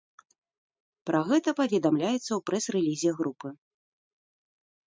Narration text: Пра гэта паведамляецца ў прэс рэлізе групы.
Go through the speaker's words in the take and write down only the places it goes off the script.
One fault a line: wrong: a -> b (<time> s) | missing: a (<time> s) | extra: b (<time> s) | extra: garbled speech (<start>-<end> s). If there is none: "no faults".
no faults